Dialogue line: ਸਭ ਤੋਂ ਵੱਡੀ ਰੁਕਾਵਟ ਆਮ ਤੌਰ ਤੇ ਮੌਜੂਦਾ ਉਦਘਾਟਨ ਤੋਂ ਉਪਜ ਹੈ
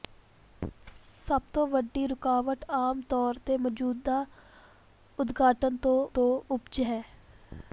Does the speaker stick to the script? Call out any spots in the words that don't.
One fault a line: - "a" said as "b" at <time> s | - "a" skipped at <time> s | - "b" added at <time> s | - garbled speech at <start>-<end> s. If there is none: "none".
- "ਤੋਂ" added at 6.1 s